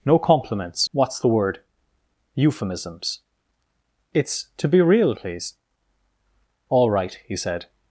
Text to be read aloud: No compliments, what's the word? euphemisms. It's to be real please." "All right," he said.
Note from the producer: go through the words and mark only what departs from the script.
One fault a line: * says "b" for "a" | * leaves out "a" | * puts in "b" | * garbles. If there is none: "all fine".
all fine